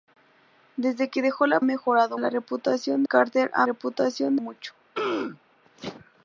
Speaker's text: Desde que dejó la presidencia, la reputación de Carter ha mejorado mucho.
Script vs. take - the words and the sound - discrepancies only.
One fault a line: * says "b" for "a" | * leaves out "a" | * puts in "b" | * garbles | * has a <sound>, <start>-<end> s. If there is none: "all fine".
* says "mejorado" for "presidencia"
* leaves out "de"
* says "reputación" for "mejorado"
* has a throat clearing, 5.0-5.4 s